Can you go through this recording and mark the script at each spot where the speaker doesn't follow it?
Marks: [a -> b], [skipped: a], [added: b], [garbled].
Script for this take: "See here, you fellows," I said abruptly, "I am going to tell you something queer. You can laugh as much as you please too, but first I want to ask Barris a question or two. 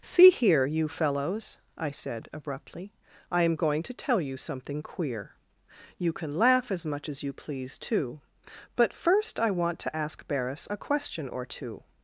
"See here, you fellows," I said abruptly, "I am going to tell you something queer. You can laugh as much as you please too, but first I want to ask Barris a question or two.